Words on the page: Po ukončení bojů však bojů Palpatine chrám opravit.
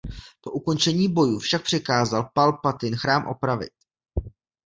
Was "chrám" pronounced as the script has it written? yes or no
yes